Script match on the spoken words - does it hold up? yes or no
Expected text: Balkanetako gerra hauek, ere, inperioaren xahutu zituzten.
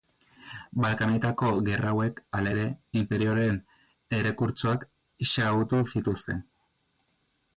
no